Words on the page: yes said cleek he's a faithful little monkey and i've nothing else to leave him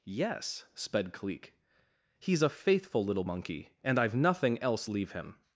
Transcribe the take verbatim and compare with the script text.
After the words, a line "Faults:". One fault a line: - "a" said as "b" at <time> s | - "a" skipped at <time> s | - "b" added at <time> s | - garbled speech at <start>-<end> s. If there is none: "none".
yes sped cleek he's a faithful little monkey and i've nothing else leave him
Faults:
- "said" said as "sped" at 0.8 s
- "to" skipped at 4.9 s